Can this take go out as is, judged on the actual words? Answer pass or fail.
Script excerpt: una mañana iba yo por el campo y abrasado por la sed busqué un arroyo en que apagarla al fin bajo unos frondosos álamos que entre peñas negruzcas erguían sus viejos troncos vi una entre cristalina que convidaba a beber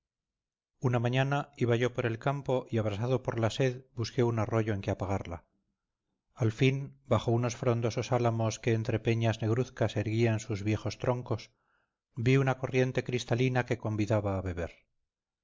fail